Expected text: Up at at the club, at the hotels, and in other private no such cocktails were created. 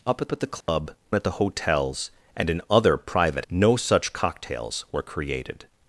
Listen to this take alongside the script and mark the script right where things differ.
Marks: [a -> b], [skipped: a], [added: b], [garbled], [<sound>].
Up at at the club, [dropout] at the hotels, and in other private no such cocktails were created.